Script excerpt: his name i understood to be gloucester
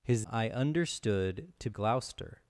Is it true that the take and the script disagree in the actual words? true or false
true